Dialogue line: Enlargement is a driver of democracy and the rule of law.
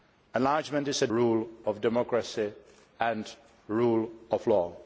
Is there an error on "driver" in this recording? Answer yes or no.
yes